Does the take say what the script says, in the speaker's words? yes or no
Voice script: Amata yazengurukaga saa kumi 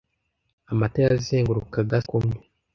no